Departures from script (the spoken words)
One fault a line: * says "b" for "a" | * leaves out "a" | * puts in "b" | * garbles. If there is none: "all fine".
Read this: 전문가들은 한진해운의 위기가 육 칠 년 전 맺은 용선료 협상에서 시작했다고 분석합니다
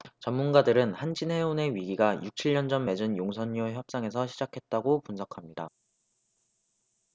all fine